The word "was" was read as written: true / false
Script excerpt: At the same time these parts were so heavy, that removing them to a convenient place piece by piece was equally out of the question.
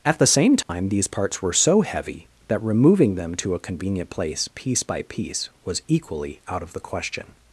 true